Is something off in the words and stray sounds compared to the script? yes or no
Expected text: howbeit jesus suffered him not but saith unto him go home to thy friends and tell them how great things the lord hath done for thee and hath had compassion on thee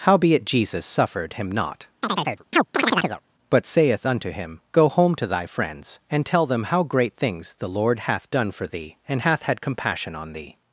yes